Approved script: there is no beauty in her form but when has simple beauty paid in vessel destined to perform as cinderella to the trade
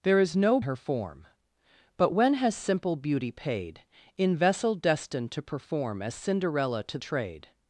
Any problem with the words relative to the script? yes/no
yes